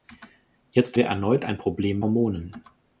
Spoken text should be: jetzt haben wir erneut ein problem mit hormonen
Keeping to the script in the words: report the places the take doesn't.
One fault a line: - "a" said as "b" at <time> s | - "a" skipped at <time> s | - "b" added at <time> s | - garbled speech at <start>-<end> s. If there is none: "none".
- "haben" skipped at 1.0 s
- "mit" skipped at 2.0 s